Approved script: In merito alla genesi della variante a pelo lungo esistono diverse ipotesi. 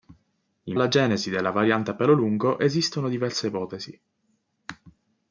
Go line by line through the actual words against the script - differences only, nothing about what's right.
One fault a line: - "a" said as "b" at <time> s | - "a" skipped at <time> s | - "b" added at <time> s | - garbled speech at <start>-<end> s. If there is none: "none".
- "merito" skipped at 0.8 s